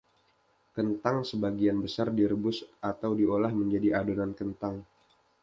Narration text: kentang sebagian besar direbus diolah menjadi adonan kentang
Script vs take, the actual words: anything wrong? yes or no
yes